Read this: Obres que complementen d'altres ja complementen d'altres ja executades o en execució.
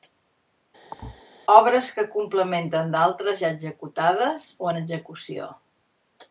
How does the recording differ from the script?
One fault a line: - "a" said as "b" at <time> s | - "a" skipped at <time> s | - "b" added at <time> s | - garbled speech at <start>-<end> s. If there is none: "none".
- "complementen d'altres ja" skipped at 3.5 s